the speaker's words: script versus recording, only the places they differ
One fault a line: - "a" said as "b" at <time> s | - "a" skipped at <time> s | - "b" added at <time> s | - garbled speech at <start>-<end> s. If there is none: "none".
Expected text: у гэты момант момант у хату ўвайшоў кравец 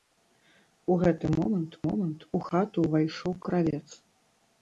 none